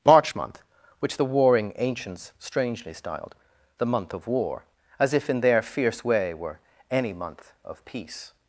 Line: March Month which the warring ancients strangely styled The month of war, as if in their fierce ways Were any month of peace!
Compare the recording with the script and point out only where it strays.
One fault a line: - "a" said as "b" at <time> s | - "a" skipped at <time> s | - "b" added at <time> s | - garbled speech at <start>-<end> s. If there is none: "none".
- "ways" said as "way" at 6.0 s